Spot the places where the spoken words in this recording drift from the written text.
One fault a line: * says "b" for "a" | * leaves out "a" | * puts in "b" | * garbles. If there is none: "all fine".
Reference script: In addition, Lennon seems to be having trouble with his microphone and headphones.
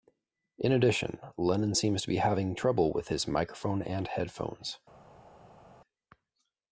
all fine